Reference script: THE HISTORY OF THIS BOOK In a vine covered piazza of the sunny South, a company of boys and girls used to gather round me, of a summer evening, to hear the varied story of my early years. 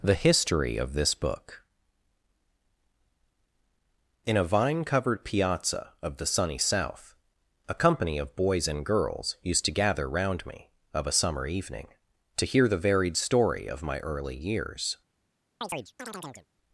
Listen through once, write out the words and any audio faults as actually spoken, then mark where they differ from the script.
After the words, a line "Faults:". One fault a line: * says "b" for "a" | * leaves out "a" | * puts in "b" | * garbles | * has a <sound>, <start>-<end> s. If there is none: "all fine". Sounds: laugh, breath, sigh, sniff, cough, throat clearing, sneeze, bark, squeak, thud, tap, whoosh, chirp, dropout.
THE HISTORY OF THIS BOOK In a vine covered piazza of the sunny South, a company of boys and girls used to gather round me, of a summer evening, to hear the varied story of my early years.
Faults:
* has a chirp, 15.6-16.5 s